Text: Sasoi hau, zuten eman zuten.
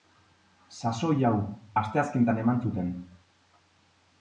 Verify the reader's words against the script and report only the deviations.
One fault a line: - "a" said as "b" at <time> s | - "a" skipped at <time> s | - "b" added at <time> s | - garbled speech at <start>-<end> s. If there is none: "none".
- "zuten" said as "asteazkenetan" at 1.8 s